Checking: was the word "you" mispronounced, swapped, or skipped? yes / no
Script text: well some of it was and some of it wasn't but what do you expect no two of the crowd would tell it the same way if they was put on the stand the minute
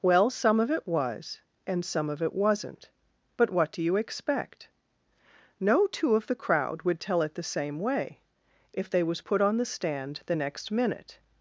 no